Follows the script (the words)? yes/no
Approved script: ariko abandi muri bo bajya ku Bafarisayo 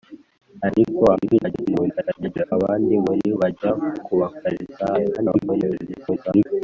no